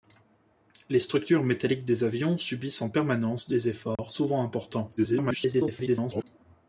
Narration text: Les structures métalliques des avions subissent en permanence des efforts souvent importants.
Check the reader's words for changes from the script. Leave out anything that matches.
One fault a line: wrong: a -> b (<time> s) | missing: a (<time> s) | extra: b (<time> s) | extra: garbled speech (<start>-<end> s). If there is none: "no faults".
extra: garbled speech (5.0-6.2 s)